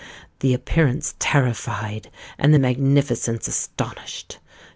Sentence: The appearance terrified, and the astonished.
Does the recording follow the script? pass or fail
fail